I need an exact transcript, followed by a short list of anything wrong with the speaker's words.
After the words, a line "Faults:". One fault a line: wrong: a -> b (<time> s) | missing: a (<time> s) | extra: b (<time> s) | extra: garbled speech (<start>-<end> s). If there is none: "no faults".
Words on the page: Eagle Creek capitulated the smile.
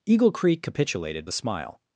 Eagle Creek capitulated the smile.
Faults:
no faults